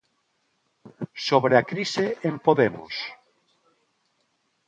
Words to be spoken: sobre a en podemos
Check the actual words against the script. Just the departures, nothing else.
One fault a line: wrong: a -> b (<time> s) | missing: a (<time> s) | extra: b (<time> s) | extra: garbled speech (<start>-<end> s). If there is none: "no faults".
extra: crise (1.7 s)